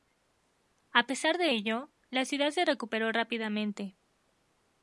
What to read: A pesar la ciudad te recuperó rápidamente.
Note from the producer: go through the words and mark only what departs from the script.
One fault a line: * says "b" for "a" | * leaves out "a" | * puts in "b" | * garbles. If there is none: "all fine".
* puts in "de ello"
* says "se" for "te"